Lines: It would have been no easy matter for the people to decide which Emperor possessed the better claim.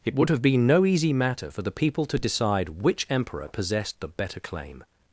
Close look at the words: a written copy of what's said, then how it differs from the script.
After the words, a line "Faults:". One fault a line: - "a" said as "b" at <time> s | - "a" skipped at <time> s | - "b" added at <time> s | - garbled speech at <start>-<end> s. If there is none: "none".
It would have been no easy matter for the people to decide which Emperor possessed the better claim.
Faults:
none